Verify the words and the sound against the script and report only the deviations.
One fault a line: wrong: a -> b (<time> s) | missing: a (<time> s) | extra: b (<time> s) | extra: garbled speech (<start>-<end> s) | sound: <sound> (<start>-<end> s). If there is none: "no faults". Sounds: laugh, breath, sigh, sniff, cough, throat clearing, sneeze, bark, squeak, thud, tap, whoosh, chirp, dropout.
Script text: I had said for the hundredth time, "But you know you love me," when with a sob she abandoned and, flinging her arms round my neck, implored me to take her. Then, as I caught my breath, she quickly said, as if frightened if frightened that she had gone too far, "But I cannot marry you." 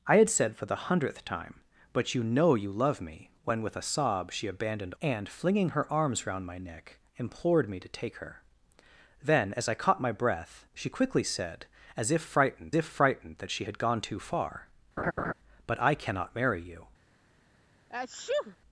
sound: laugh (15.0-15.3 s)
sound: sneeze (17.9-18.6 s)